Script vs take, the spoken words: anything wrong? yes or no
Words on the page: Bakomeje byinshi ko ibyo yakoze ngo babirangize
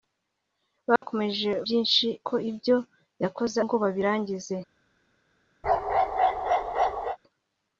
no